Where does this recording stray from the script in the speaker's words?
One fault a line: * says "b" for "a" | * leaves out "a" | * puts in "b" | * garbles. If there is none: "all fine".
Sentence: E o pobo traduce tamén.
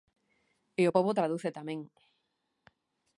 all fine